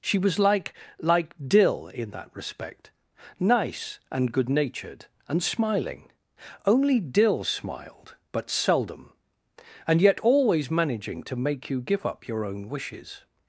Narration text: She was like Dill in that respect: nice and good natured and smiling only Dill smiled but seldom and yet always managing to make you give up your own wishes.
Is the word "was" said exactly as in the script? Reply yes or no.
yes